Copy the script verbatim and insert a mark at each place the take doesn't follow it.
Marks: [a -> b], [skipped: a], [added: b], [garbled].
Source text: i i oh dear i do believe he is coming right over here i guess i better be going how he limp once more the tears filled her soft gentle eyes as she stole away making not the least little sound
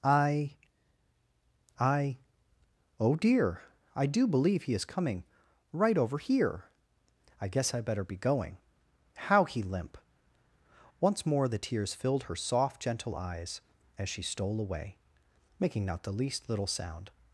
i i oh dear i do believe he is coming right over here i guess i better be going how he limp once more the tears filled her soft gentle eyes as she stole away making not the least little sound